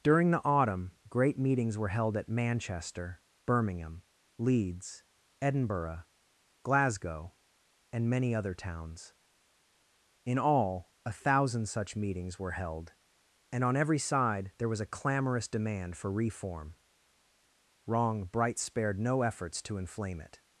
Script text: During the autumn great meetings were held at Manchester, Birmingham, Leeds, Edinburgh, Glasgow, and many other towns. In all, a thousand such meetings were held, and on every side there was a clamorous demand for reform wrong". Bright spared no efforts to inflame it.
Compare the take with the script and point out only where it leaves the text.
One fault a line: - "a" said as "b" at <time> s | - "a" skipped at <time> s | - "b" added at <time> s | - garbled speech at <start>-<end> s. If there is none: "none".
none